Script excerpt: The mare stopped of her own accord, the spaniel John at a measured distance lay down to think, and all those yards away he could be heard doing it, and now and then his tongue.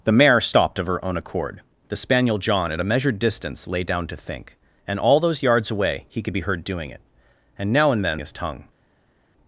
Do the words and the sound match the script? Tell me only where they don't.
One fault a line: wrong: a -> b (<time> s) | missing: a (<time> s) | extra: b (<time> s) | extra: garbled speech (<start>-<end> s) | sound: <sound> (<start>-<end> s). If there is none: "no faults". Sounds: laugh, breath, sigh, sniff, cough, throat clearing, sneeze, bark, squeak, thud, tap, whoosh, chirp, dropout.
no faults